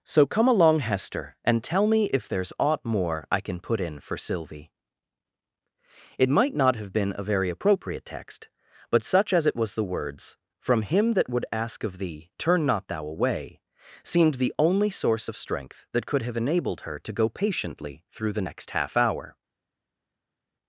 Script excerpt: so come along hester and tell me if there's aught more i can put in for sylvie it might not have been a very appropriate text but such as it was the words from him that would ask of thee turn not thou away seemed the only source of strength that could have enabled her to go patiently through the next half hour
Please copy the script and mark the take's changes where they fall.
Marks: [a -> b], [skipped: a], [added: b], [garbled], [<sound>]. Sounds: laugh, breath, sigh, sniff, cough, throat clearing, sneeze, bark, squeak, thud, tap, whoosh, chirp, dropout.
so come along hester and tell me if there's aught more i can put in for sylvie it might not have been a very appropriate text but such as it was the words from him that would ask of thee turn not thou away seemed the only source of strength that could have enabled her to go patiently through the next half hour